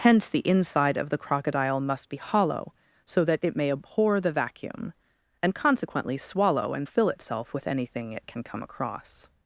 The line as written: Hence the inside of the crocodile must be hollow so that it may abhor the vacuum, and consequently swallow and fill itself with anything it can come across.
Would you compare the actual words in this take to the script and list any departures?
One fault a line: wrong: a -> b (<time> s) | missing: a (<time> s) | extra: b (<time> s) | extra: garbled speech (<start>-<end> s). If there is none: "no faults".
no faults